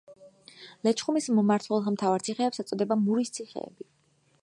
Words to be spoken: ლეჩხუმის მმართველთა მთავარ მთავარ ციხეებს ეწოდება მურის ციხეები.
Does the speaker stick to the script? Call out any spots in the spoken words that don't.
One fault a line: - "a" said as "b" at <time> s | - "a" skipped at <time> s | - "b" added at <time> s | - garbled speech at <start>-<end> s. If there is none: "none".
- "მთავარ" skipped at 2.2 s